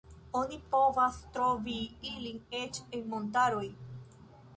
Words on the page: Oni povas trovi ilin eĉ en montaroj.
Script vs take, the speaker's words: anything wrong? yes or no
no